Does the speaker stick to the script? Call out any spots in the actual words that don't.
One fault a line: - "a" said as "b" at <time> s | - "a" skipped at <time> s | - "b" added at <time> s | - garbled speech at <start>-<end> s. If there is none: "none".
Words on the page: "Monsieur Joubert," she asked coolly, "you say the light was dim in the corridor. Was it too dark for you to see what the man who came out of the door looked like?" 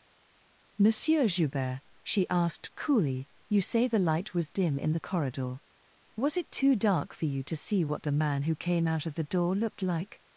none